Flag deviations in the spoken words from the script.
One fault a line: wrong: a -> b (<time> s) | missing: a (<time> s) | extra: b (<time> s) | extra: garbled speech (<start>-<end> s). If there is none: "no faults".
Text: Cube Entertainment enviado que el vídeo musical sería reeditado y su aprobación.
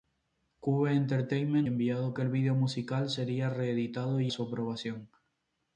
no faults